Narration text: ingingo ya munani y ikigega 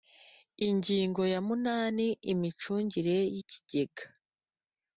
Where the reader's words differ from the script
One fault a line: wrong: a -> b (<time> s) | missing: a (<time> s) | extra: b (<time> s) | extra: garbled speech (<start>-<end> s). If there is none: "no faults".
extra: imicungire (2.3 s)